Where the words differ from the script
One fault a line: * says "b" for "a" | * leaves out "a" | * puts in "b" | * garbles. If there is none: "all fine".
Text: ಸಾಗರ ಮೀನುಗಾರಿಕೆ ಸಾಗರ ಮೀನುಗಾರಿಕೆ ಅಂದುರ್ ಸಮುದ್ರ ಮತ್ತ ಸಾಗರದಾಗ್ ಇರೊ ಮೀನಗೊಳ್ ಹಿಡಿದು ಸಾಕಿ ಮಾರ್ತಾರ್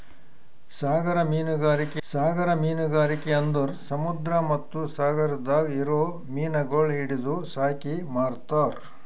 all fine